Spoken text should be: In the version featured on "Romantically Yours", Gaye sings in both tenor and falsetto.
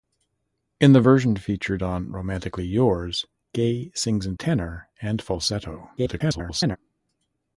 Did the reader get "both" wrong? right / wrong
wrong